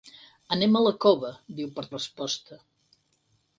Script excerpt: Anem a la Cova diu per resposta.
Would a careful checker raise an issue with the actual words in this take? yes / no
no